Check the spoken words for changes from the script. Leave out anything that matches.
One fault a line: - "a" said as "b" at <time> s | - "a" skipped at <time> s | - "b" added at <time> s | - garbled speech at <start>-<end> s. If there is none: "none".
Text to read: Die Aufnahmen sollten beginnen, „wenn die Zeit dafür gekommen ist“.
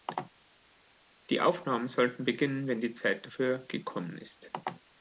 none